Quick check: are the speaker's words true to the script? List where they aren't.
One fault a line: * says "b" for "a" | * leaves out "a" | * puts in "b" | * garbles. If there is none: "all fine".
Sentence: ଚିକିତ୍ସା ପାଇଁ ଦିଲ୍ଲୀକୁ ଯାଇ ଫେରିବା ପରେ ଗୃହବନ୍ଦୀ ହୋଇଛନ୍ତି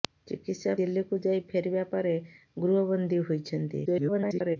* leaves out "ପାଇଁ"
* garbles